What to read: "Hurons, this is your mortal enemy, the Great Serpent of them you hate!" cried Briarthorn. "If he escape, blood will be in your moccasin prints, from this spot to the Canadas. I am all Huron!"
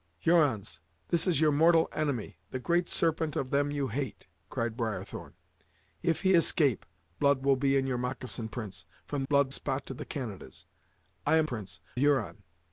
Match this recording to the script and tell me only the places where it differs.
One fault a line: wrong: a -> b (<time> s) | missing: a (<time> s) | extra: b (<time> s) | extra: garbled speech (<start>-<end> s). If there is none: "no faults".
wrong: this -> blood (9.3 s)
wrong: all -> prints (11.4 s)